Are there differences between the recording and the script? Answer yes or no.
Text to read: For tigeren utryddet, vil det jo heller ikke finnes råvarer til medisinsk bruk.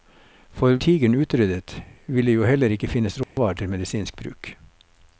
no